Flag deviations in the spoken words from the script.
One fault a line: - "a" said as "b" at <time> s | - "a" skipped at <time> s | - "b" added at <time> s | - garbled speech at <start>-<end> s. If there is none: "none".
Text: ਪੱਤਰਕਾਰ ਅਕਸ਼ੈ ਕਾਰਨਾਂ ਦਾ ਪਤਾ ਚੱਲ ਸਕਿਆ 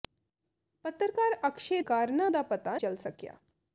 none